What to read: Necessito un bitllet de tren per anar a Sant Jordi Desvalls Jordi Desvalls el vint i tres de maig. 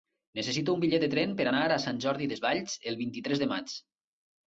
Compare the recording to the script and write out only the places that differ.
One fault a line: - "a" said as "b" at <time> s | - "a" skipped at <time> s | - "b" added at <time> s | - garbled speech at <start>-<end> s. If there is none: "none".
- "Jordi Desvalls" skipped at 2.8 s